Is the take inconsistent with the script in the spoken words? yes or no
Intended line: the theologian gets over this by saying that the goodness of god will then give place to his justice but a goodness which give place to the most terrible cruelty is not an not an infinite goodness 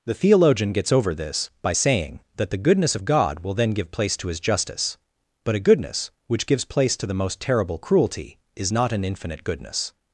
yes